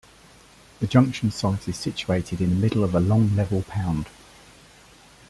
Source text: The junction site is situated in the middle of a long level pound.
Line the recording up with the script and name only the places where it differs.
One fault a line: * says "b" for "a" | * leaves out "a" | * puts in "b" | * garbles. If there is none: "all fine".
all fine